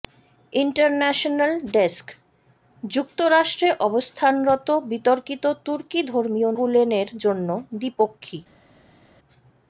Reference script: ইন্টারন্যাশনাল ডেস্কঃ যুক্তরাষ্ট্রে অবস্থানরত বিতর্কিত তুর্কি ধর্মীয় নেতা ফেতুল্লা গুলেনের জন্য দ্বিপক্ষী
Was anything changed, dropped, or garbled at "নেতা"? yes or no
yes